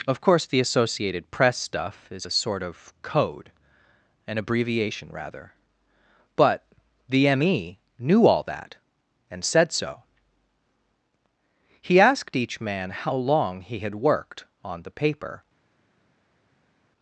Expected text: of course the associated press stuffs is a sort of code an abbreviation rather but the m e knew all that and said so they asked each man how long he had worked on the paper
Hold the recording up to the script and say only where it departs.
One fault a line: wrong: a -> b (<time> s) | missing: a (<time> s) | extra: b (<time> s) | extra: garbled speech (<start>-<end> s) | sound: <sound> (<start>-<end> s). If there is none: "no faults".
wrong: stuffs -> stuff (1.6 s)
wrong: they -> he (11.8 s)